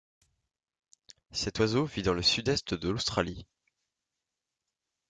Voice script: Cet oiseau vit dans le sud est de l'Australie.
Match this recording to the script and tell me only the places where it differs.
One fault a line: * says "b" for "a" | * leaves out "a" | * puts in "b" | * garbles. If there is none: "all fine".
all fine